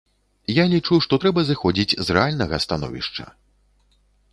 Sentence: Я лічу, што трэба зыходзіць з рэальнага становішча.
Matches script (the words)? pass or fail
pass